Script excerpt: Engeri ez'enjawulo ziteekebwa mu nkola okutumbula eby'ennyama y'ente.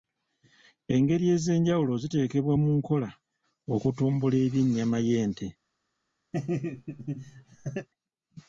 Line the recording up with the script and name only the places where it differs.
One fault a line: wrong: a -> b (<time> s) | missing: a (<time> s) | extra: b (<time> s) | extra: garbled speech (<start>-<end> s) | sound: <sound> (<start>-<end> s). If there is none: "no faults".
sound: laugh (6.3-7.9 s)